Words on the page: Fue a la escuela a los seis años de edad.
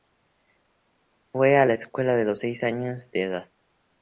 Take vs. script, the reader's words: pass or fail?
pass